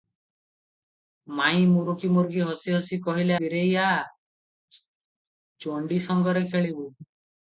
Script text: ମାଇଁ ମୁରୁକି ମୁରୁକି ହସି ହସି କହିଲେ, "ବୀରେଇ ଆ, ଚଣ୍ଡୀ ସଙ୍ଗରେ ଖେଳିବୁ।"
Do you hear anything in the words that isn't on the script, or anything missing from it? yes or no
no